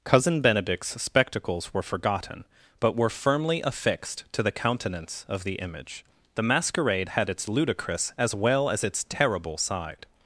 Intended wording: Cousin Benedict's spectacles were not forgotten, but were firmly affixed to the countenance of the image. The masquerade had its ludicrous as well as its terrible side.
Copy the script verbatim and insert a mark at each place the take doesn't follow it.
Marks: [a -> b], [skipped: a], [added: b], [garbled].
Cousin Benedict's spectacles were [skipped: not] forgotten, but were firmly affixed to the countenance of the image. The masquerade had its ludicrous as well as its terrible side.